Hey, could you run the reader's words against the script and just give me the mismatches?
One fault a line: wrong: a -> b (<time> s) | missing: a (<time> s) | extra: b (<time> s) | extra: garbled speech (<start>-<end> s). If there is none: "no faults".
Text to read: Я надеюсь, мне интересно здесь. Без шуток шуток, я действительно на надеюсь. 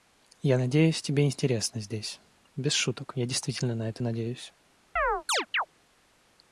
wrong: мне -> тебе (1.0 s)
missing: шуток (3.1 s)
extra: это (3.9 s)